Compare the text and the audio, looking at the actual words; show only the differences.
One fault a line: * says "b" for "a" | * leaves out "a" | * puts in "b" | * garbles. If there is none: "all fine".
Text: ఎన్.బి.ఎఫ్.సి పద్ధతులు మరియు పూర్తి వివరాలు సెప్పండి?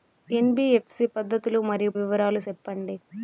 * leaves out "పూర్తి"